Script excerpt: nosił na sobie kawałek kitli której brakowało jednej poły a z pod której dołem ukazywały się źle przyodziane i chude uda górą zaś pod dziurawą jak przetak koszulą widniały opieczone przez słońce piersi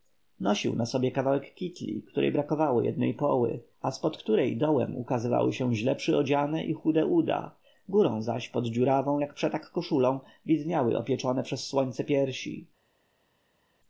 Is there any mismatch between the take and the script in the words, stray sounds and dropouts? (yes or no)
no